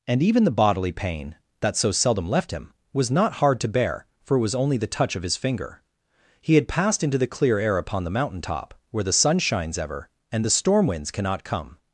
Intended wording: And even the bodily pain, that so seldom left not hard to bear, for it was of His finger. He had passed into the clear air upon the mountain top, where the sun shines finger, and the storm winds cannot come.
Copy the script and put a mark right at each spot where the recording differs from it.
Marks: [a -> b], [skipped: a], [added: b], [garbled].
And even the bodily pain, that so seldom left [added: him was] not hard to bear, for it was [added: only the touch] of His finger. He had passed into the clear air upon the mountain top, where the sun shines [finger, -> ever] and the storm winds cannot come.